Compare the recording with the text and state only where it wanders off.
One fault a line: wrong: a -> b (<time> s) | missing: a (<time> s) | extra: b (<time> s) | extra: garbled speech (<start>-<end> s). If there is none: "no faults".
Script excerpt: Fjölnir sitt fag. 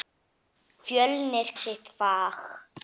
no faults